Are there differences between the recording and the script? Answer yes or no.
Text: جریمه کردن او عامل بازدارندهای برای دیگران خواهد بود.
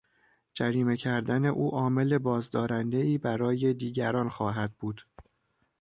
no